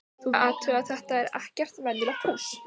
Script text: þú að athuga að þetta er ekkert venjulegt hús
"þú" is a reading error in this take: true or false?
false